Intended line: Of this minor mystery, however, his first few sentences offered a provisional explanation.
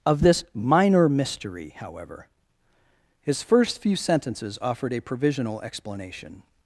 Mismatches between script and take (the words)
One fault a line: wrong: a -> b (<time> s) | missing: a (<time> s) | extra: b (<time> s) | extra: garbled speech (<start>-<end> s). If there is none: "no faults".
no faults